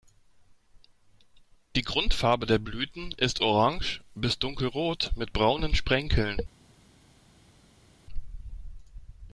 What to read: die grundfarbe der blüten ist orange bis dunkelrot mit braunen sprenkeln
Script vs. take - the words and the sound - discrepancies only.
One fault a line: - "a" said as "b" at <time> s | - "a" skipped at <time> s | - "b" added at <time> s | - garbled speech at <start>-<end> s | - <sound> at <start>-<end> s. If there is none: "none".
none